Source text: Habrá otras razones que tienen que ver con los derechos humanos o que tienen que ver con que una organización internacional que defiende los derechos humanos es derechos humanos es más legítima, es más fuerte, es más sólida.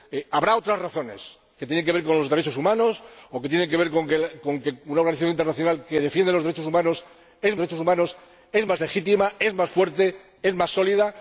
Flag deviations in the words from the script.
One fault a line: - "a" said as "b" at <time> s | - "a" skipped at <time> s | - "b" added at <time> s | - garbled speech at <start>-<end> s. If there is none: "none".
none